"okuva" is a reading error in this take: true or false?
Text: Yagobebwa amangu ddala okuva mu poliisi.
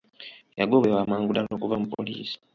false